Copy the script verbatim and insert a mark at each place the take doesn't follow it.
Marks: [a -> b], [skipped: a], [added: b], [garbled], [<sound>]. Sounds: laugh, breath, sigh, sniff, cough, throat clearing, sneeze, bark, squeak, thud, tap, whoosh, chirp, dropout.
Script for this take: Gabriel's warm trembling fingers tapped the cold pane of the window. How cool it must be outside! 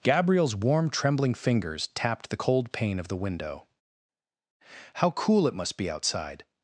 Gabriel's warm trembling fingers tapped the cold pane of the window. How cool it must be outside!